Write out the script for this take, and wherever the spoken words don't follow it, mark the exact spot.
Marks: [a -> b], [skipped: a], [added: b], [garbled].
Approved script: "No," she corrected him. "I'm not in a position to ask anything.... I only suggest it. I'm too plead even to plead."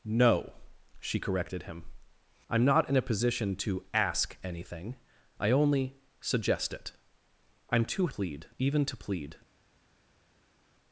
"No," she corrected him. "I'm not in a position to ask anything.... I only suggest it. I'm too plead even to plead."